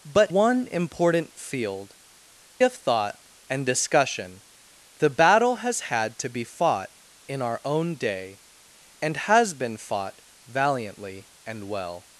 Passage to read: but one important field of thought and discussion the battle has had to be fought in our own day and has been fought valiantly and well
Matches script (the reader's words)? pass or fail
pass